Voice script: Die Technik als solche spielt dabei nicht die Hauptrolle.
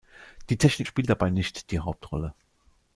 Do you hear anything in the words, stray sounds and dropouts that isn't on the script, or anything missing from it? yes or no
yes